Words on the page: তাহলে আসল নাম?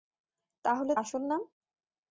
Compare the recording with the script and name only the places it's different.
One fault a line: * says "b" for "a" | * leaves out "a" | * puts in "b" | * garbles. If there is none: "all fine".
all fine